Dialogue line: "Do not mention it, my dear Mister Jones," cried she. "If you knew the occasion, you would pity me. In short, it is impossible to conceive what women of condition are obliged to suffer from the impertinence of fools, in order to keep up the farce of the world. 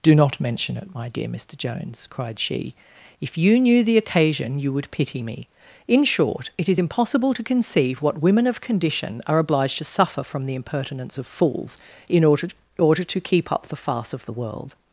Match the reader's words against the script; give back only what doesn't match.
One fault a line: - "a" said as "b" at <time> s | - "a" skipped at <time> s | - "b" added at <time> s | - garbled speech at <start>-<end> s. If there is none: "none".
- "order" added at 12.8 s